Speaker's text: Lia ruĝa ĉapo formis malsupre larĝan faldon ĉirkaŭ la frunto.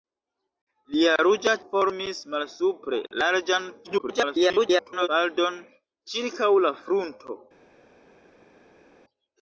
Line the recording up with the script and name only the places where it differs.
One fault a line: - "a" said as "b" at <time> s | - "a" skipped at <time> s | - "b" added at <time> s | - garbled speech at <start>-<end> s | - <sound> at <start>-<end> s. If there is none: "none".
- "ĉapo" skipped at 1.5 s
- garbled speech at 3.8-5.1 s